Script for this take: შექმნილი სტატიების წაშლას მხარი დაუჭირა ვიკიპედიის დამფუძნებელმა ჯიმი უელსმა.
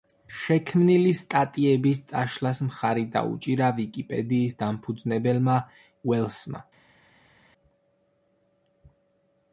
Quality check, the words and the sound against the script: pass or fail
fail